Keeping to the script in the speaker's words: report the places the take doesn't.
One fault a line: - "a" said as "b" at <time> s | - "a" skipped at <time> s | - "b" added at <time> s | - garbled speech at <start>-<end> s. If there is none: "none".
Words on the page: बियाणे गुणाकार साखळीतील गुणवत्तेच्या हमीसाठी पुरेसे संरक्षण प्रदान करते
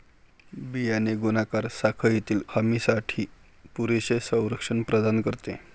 - "गुणवत्तेच्या" skipped at 2.4 s